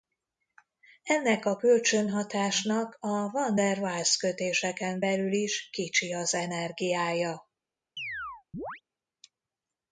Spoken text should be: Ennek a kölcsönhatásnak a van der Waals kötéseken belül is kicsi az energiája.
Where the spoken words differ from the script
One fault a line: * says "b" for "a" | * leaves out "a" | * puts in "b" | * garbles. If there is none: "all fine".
all fine